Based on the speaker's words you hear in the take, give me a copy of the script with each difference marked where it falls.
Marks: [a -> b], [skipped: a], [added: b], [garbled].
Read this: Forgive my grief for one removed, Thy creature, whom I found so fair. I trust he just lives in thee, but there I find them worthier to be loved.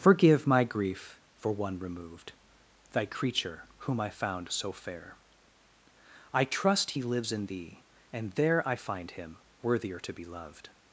Forgive my grief for one removed, Thy creature, whom I found so fair. I trust he [skipped: just] lives in thee, [but -> and] there I find [them -> him] worthier to be loved.